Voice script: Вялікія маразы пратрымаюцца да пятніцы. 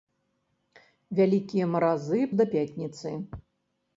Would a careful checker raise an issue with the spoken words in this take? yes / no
yes